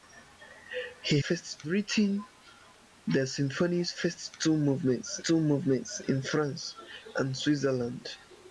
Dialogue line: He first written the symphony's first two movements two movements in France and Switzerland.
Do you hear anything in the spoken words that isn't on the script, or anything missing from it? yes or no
no